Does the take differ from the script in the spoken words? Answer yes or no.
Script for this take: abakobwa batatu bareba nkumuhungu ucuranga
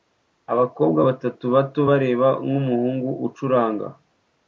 yes